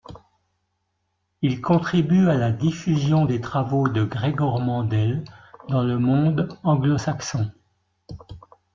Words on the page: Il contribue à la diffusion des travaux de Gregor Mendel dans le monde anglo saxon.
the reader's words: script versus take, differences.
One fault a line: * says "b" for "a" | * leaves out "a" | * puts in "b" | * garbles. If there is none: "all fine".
all fine